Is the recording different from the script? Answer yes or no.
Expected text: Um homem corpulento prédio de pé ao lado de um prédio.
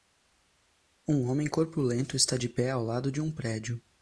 yes